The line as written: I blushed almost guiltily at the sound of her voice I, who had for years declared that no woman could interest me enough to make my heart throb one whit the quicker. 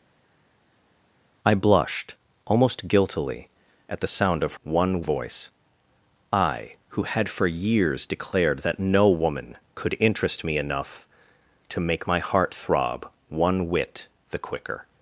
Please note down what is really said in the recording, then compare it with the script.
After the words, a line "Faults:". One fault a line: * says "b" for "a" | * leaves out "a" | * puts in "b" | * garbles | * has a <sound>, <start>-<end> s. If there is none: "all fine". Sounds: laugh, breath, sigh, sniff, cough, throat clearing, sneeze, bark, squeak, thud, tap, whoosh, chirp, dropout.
I blushed almost guiltily at the sound of one voice I, who had for years declared that no woman could interest me enough to make my heart throb one whit the quicker.
Faults:
* says "one" for "her"